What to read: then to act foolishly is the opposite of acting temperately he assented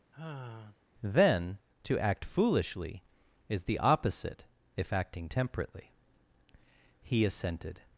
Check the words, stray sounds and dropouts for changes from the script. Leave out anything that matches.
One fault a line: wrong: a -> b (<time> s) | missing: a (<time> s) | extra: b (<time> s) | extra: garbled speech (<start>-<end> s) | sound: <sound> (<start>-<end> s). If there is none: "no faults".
sound: sigh (0.1-0.8 s)
wrong: of -> if (4.7 s)